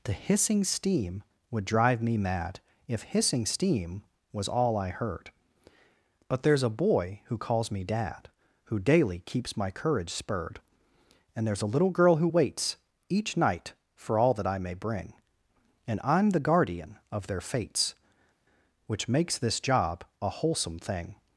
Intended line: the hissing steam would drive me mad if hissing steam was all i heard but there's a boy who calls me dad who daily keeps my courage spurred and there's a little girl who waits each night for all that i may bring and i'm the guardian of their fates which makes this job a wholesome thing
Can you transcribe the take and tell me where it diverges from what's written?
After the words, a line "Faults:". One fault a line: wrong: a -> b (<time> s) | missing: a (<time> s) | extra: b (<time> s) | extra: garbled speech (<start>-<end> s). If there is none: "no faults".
the hissing steam would drive me mad if hissing steam was all i heard but there's a boy who calls me dad who daily keeps my courage spurred and there's a little girl who waits each night for all that i may bring and i'm the guardian of their fates which makes this job a wholesome thing
Faults:
no faults